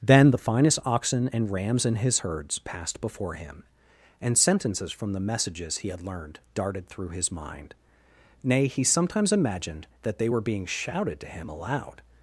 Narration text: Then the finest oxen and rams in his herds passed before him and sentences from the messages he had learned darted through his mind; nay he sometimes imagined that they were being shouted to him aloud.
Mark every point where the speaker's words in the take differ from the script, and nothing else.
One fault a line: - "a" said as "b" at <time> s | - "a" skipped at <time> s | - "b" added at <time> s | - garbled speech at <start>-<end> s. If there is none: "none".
none